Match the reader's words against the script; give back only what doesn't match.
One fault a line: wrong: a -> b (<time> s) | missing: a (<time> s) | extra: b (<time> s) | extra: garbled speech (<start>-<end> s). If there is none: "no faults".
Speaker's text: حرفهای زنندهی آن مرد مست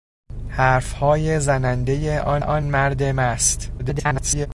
extra: آن (2.4 s)
extra: garbled speech (3.8-4.5 s)